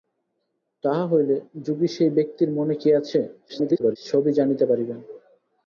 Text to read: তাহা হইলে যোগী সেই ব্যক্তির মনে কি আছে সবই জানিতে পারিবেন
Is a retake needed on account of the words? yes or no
yes